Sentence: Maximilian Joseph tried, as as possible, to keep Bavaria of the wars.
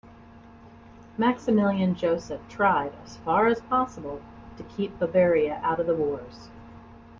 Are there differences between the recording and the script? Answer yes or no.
yes